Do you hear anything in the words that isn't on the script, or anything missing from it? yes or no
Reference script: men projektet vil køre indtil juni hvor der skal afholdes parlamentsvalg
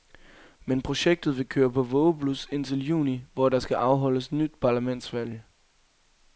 yes